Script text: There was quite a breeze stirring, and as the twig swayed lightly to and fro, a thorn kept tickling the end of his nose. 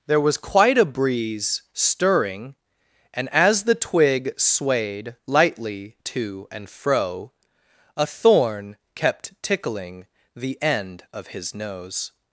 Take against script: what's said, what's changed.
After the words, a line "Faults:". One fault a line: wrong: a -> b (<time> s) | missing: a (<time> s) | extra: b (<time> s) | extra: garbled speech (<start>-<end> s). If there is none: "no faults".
There was quite a breeze stirring, and as the twig swayed lightly to and fro, a thorn kept tickling the end of his nose.
Faults:
no faults